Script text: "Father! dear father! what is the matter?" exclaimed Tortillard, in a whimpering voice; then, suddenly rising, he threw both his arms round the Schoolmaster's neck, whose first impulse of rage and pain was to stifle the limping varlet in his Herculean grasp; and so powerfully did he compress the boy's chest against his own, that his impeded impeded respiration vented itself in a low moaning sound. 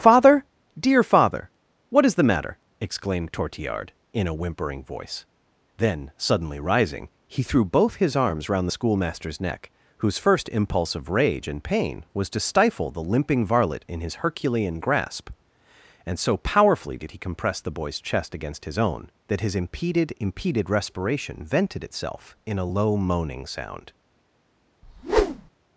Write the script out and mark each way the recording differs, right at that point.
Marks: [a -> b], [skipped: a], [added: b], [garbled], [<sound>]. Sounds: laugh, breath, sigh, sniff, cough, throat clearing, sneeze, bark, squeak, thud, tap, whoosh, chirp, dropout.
"Father! dear father! what is the matter?" exclaimed Tortillard, in a whimpering voice; then, suddenly rising, he threw both his arms round the Schoolmaster's neck, whose first impulse of rage and pain was to stifle the limping varlet in his Herculean grasp; and so powerfully did he compress the boy's chest against his own, that his impeded impeded respiration vented itself in a low moaning sound. [whoosh]